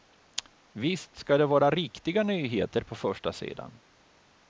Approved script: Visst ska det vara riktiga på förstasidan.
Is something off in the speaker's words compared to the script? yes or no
yes